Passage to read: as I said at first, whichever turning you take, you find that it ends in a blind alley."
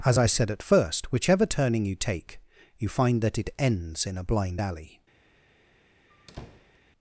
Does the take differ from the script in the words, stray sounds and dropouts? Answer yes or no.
yes